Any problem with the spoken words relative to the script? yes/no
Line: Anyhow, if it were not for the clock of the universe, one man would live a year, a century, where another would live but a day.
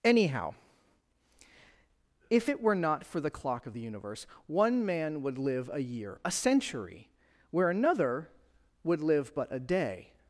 no